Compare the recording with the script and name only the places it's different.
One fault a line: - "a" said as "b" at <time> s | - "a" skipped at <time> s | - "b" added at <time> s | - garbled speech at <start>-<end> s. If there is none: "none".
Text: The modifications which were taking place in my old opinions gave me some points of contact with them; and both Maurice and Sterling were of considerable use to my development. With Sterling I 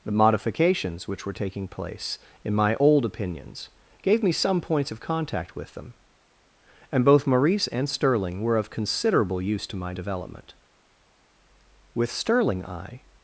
none